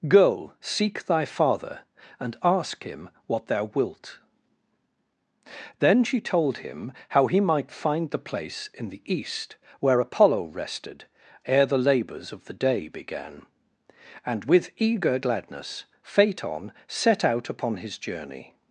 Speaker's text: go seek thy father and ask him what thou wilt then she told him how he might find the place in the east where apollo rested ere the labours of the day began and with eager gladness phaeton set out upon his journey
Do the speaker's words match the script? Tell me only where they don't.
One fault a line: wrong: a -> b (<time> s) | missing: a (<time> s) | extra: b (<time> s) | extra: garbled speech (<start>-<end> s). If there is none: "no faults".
no faults